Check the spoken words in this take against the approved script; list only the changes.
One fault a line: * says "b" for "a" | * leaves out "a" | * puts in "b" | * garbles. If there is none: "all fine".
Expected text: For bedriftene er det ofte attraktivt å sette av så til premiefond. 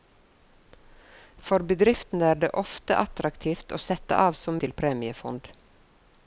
all fine